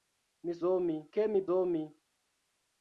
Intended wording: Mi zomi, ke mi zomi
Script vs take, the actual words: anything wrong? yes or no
no